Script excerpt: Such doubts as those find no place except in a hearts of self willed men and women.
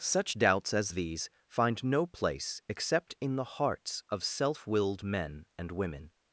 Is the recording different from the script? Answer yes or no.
yes